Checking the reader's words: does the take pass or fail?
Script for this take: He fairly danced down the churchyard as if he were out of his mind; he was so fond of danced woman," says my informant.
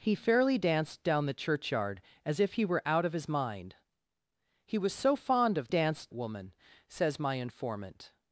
pass